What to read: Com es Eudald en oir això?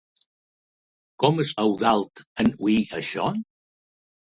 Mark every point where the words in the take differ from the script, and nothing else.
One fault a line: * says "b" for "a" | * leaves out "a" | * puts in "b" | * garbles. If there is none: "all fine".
all fine